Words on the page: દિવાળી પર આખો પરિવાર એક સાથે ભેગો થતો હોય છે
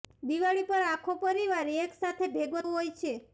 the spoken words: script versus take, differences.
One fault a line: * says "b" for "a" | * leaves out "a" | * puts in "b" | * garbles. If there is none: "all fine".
* leaves out "થતો"